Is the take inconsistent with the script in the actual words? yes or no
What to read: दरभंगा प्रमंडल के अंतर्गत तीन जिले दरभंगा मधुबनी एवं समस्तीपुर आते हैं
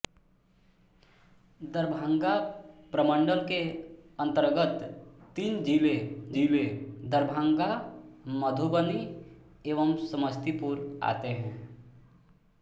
yes